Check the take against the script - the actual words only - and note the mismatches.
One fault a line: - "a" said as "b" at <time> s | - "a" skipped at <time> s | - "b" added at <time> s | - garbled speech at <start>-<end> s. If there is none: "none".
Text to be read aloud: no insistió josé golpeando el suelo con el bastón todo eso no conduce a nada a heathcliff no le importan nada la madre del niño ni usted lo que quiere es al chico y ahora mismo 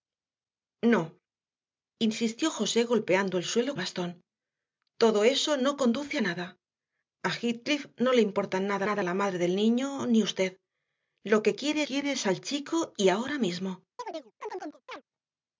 - "con el" skipped at 3.8 s
- "nada" added at 8.8 s
- "quiere" added at 11.8 s